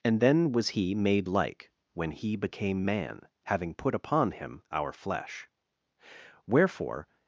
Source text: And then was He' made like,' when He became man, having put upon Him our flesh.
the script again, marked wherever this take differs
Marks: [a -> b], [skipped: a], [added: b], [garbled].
And then was He' made like,' when He became man, having put upon Him our flesh. [added: Wherefore]